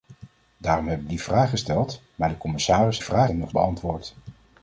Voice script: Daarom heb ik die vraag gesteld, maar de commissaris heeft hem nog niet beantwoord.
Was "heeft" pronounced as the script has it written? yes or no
no